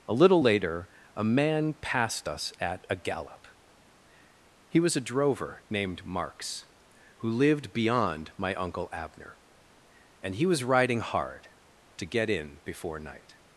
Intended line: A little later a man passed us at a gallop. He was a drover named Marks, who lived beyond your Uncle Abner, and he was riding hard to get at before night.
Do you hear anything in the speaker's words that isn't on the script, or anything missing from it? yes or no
yes